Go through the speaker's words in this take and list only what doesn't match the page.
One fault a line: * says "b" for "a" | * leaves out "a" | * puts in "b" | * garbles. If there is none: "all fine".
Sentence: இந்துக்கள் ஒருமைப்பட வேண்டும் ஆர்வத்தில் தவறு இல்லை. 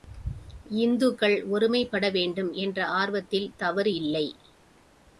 * puts in "என்ற"